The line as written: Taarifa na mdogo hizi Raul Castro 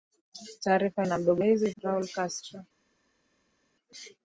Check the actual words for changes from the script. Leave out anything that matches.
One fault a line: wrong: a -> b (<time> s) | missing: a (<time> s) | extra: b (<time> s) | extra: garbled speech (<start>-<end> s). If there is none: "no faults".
no faults